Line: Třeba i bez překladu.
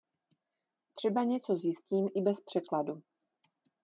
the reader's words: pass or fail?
fail